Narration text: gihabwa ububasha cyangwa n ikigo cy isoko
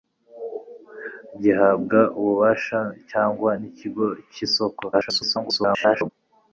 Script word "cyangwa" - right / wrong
right